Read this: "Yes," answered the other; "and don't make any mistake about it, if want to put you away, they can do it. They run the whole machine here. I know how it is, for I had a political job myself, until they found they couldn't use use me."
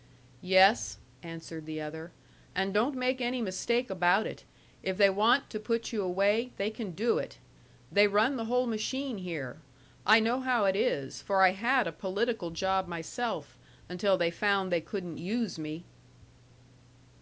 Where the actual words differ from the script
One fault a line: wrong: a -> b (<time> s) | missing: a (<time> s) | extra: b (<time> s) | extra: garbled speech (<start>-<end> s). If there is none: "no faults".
extra: they (5.0 s)
missing: use (15.6 s)